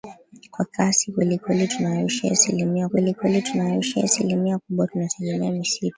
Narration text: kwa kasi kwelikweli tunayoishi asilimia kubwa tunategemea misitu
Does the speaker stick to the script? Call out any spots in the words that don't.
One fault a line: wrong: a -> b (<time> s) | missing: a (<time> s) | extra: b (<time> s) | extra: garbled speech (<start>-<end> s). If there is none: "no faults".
extra: kwelikweli tunayoishi asilimia (2.9 s)